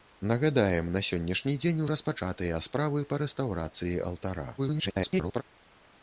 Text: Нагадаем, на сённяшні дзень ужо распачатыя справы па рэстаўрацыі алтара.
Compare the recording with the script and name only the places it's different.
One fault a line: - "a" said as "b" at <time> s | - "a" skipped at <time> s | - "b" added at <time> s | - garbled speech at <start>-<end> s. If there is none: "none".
- "ужо" skipped at 1.8 s
- garbled speech at 4.6-5.4 s